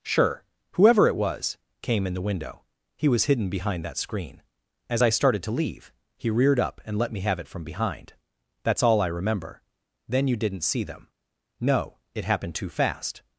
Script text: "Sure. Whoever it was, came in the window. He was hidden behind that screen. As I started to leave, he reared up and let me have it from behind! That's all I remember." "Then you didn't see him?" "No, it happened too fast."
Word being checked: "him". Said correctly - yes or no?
no